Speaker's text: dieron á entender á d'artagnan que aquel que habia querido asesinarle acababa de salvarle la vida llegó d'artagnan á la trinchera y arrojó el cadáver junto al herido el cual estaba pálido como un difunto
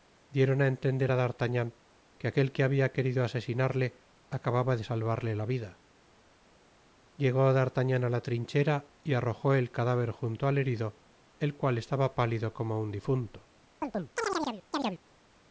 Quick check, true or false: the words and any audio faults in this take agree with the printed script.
false